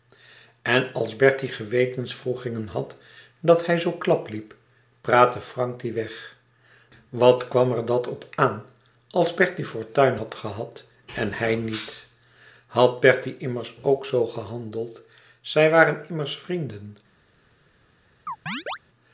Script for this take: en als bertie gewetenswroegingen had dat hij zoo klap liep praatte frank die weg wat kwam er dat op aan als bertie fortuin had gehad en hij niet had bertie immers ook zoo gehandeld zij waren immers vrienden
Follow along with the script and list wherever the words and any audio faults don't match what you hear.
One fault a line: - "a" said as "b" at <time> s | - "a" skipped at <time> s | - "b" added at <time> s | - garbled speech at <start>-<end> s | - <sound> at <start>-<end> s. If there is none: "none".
- chirp at 18.3-18.8 s